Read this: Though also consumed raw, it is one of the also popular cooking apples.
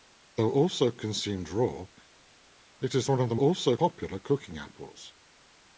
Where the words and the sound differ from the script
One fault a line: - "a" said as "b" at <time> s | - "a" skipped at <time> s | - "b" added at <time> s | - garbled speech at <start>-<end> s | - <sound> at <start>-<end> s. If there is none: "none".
none